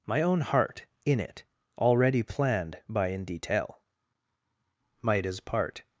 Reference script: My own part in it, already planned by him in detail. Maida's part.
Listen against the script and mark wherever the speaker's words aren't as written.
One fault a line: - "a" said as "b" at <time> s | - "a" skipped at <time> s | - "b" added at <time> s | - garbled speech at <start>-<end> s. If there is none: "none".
- "part" said as "heart" at 0.4 s
- "him" skipped at 3.1 s